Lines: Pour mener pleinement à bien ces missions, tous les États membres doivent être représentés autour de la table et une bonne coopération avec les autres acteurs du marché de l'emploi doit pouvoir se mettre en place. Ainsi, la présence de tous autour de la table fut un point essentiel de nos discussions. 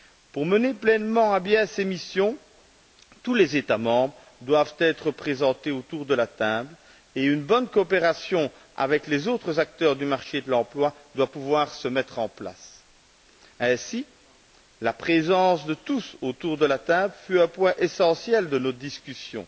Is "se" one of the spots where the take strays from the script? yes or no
no